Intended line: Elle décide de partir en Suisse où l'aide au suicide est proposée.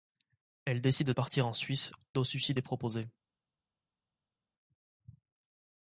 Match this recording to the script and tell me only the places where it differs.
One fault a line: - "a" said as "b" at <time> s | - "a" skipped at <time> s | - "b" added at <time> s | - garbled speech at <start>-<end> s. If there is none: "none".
- "de" skipped at 1.1 s
- "où l'aide" skipped at 1.9 s